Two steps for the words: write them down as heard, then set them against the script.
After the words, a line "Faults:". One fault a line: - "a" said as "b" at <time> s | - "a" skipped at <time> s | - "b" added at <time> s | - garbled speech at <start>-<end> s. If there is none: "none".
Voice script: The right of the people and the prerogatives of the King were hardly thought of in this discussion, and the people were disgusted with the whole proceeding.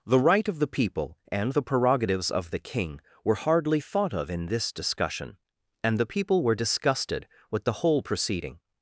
The right of the people and the prerogatives of the King were hardly thought of in this discussion, and the people were disgusted with the whole proceeding.
Faults:
none